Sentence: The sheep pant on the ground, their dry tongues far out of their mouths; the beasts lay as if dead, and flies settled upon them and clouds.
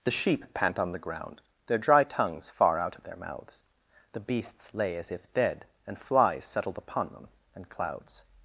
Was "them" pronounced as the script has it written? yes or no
yes